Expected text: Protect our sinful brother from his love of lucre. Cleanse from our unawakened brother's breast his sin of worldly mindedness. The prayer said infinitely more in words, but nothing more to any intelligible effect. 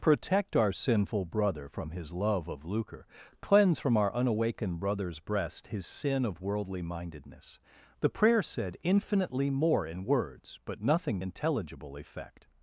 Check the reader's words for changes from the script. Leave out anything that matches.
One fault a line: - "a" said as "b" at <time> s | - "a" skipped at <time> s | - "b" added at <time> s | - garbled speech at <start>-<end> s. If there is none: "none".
- "more to any" skipped at 11.2 s